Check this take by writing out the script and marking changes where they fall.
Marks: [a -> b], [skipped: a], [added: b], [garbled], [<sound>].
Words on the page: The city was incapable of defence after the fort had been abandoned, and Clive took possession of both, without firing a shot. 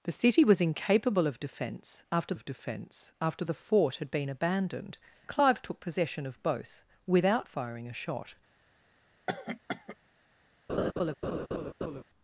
The city was incapable of defence after [added: of defence after] the fort had been abandoned, [skipped: and] Clive took possession of both, without firing a shot. [cough] [laugh]